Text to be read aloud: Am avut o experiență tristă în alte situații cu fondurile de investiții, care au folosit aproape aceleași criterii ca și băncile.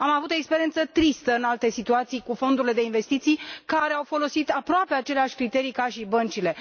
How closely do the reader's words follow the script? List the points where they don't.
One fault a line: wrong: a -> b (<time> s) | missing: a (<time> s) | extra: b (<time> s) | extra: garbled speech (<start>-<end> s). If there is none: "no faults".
no faults